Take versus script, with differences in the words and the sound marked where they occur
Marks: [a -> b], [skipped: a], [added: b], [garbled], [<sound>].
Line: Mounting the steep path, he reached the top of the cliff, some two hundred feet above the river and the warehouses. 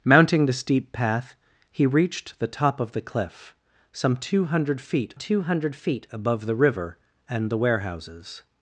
Mounting the steep path, he reached the top of the cliff, some two hundred feet [added: two hundred feet] above the river and the warehouses.